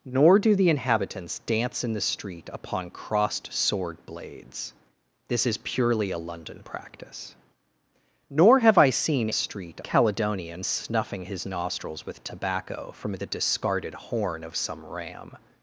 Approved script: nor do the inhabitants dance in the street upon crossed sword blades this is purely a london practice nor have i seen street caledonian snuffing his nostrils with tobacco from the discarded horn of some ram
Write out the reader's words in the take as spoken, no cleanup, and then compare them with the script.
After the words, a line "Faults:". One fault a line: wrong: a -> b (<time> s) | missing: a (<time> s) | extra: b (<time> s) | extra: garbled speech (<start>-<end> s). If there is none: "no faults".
nor do the inhabitants dance in the street upon crossed sword blades this is purely a london practice nor have i seen street caledonian snuffing his nostrils with tobacco from the discarded horn of some ram
Faults:
no faults